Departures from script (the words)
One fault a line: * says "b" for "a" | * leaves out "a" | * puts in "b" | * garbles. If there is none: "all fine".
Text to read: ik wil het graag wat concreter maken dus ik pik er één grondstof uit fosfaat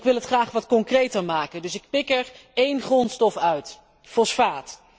all fine